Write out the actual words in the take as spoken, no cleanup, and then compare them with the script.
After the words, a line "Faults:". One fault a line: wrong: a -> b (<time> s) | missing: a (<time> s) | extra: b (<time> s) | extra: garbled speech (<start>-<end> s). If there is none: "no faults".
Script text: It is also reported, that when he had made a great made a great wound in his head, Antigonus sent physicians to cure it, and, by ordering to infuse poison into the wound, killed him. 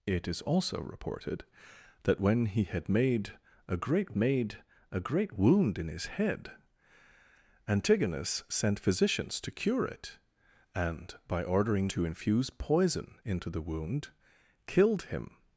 It is also reported, that when he had made a great made a great wound in his head, Antigonus sent physicians to cure it, and, by ordering to infuse poison into the wound, killed him.
Faults:
no faults